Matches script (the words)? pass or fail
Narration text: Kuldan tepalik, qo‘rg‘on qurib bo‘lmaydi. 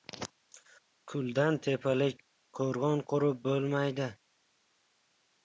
pass